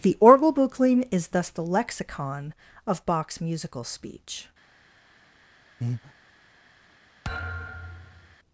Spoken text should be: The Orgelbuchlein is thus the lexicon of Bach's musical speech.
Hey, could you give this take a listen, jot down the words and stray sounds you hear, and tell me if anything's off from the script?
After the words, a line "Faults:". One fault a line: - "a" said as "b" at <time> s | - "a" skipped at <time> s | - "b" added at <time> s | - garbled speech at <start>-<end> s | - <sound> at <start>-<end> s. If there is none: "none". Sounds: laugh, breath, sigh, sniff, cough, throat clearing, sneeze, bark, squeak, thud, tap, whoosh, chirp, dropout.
The Orgelbuchlein is thus the lexicon of Bach's musical speech.
Faults:
- breath at 5.8-6.1 s
- thud at 7.2-8.4 s